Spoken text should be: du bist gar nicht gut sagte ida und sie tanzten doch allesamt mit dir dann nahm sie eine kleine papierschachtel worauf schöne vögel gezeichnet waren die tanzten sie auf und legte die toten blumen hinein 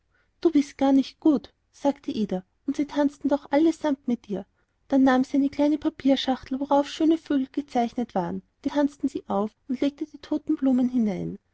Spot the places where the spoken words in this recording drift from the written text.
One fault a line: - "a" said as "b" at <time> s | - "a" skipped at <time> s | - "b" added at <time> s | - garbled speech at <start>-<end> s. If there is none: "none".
none